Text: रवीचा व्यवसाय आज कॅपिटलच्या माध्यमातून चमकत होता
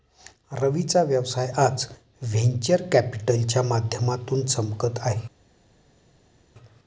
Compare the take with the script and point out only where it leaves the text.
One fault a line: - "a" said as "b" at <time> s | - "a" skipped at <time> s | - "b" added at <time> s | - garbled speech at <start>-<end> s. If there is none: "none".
- "व्हेंचर" added at 2.2 s
- "होता" said as "आहे" at 5.0 s